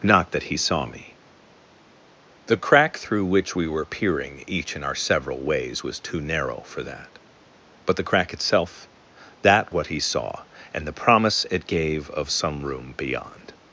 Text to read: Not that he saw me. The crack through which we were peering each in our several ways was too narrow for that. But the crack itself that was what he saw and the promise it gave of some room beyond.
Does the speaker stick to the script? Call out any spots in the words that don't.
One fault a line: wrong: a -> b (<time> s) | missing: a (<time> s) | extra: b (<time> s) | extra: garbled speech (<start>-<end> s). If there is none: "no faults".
missing: was (9.7 s)